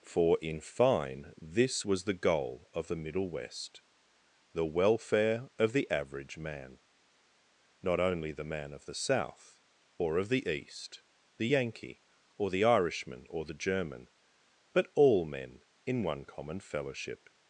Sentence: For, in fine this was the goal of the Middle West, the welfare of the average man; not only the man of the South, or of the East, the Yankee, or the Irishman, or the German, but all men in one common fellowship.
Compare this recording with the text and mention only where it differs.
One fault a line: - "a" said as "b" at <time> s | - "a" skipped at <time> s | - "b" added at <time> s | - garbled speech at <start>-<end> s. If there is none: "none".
none